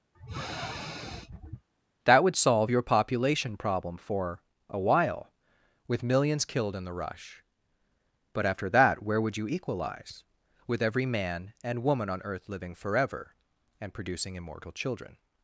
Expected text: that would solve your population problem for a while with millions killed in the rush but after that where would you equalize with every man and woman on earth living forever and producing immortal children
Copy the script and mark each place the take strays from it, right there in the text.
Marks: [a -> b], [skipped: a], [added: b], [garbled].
that would solve your population problem for a while with millions killed in the rush but after that where would you equalize with every man and woman on earth living forever and producing immortal children